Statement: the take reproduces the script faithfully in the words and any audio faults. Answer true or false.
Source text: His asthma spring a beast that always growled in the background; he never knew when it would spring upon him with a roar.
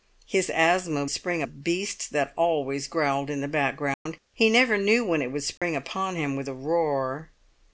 false